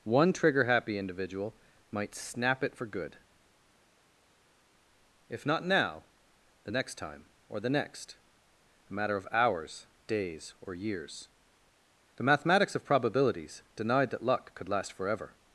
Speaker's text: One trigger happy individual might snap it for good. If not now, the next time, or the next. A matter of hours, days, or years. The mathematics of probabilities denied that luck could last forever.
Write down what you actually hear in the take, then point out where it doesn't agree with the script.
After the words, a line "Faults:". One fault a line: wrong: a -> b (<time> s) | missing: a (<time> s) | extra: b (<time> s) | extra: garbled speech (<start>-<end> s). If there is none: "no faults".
One trigger happy individual might snap it for good. If not now, the next time, or the next. A matter of hours, days, or years. The mathematics of probabilities denied that luck could last forever.
Faults:
no faults